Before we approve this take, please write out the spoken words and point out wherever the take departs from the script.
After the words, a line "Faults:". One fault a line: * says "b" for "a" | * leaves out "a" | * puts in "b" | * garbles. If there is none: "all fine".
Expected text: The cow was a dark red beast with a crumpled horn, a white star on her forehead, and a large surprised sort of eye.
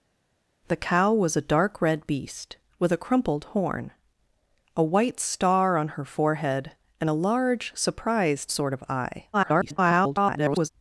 The cow was a dark red beast with a crumpled horn, a white star on her forehead, and a large surprised sort of eye. [garbled]
Faults:
* garbles